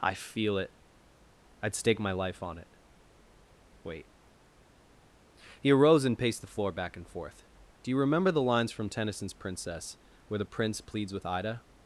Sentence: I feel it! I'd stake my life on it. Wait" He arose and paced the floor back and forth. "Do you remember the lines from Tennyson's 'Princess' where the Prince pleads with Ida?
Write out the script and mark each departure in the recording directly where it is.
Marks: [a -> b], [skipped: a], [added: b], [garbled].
I feel it! I'd stake my life on it. Wait" He arose and paced the floor back and forth. "Do you remember the lines from Tennyson's 'Princess' where the Prince pleads with Ida?